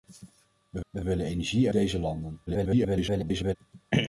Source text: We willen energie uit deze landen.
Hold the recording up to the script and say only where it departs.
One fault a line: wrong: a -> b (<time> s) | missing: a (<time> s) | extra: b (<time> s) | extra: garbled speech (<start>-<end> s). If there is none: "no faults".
extra: we (0.9 s)
missing: uit (1.7 s)
extra: garbled speech (2.5-3.6 s)